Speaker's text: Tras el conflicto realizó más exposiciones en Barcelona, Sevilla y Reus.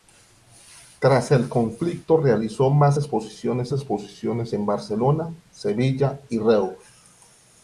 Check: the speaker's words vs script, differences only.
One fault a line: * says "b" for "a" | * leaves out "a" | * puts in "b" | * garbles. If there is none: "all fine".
* puts in "exposiciones"